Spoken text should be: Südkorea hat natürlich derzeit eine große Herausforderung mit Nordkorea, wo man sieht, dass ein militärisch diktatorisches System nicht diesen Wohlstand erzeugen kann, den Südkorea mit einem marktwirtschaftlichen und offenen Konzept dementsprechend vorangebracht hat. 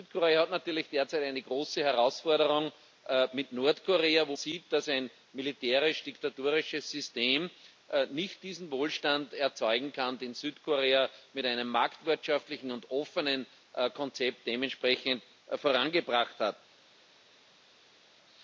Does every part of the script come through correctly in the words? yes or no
no